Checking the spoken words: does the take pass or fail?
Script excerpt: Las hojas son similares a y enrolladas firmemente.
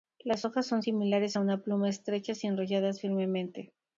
fail